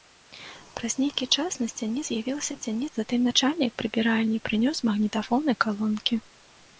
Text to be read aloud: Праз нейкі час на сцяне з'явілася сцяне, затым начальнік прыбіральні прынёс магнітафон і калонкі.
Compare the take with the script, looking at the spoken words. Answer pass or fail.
pass